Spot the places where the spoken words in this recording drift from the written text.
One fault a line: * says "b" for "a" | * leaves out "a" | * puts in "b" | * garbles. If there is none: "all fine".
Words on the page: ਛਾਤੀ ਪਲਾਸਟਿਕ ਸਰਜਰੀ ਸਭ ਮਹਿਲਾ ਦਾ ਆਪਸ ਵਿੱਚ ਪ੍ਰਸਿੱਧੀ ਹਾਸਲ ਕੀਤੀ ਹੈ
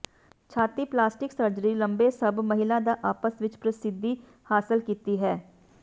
* puts in "ਲੰਬੇ"